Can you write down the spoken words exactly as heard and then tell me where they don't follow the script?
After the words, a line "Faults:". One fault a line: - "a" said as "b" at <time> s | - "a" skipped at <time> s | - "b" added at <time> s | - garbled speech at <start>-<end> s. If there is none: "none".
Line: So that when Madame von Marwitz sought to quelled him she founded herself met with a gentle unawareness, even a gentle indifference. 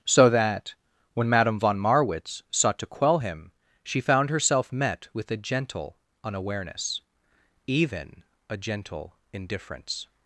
So that when Madame von Marwitz sought to quell him she found herself met with a gentle unawareness, even a gentle indifference.
Faults:
- "quelled" said as "quell" at 2.9 s
- "founded" said as "found" at 4.0 s